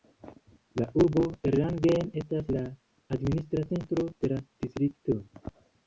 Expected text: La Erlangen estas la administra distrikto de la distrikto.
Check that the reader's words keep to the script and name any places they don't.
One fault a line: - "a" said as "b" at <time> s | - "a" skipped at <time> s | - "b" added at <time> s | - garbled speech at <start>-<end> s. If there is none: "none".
- "urbo" added at 1.0 s
- "distrikto" said as "centro" at 3.8 s